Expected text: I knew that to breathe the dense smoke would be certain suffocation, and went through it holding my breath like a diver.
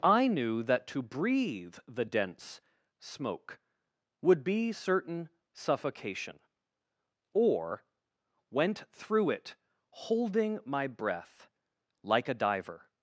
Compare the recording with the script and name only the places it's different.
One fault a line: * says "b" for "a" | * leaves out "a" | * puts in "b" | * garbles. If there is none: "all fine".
* says "or" for "and"